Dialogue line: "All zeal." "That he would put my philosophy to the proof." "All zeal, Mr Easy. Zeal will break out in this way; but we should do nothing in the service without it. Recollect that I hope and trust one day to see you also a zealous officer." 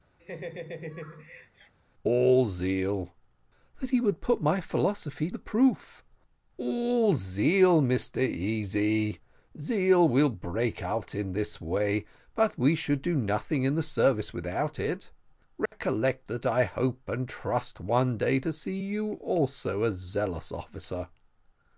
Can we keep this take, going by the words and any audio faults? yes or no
no